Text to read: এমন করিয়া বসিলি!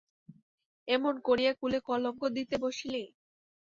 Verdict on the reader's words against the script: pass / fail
fail